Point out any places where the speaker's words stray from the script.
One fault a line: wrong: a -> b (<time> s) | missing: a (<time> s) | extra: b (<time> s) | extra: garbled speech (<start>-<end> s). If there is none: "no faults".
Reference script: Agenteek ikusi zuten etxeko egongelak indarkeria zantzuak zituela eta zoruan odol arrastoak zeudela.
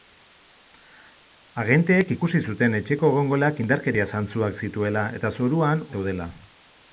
missing: odol arrastoak (5.8 s)